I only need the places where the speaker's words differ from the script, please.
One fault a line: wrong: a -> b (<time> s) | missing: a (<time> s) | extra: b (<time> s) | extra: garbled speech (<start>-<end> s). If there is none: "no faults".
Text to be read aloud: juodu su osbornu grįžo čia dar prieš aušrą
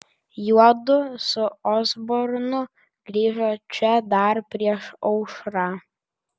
no faults